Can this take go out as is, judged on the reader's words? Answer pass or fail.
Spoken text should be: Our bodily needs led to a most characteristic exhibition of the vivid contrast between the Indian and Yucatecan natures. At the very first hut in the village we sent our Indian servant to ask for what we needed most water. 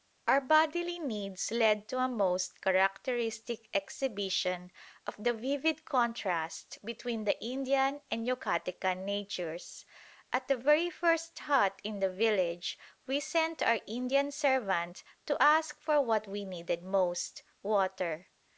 pass